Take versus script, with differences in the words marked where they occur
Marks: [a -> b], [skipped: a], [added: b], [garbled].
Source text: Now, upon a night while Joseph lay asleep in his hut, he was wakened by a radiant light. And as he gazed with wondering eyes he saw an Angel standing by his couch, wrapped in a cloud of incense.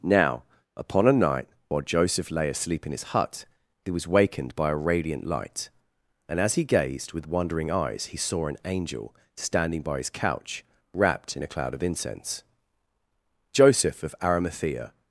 Now, upon a night while Joseph lay asleep in his hut, he was wakened by a radiant light. And as he gazed with wondering eyes he saw an Angel standing by his couch, wrapped in a cloud of incense. [added: Joseph of Arimathea]